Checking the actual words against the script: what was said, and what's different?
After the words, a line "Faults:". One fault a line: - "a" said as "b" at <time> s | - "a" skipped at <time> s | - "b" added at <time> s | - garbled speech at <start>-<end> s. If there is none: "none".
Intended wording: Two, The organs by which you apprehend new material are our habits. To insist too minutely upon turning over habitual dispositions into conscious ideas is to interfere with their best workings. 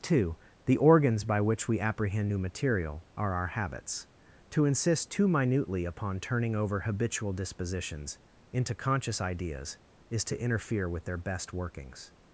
Two, The organs by which we apprehend new material are our habits. To insist too minutely upon turning over habitual dispositions into conscious ideas is to interfere with their best workings.
Faults:
- "you" said as "we" at 1.7 s